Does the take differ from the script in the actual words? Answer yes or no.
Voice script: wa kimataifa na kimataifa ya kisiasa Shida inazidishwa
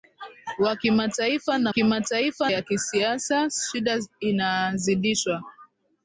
no